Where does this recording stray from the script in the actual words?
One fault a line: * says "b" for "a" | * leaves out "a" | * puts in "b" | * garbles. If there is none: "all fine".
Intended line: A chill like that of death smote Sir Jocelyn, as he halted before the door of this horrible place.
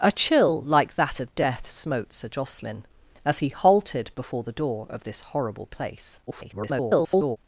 * garbles